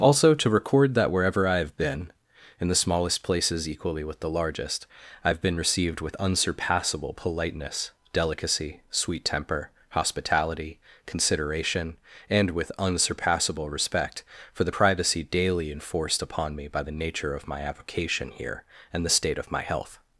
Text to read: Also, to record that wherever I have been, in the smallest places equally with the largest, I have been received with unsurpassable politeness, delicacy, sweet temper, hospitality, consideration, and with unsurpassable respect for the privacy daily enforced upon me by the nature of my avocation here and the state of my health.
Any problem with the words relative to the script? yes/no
no